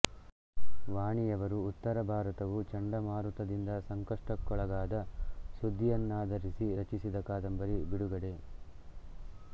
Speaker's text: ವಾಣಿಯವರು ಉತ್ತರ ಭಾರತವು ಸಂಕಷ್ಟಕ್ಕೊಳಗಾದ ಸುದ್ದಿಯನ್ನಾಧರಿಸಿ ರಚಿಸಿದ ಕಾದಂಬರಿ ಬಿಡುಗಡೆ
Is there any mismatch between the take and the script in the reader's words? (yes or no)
yes